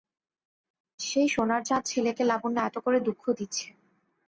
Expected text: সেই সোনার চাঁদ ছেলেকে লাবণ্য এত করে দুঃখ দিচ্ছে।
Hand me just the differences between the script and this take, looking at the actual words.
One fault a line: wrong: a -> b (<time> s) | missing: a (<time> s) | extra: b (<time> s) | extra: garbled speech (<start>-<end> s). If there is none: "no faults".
no faults